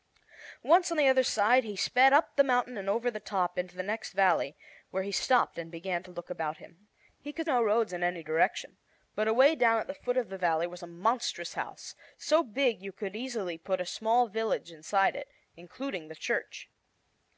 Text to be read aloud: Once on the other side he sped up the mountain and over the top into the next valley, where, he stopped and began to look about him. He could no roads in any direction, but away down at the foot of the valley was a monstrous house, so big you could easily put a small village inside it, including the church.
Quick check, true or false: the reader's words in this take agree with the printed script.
true